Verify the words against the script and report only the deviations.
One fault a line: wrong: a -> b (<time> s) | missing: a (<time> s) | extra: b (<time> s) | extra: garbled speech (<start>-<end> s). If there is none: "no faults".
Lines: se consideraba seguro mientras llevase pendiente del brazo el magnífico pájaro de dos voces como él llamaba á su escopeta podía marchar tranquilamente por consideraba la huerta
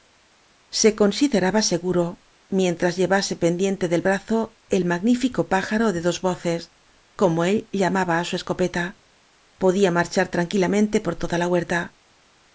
wrong: consideraba -> toda (11.2 s)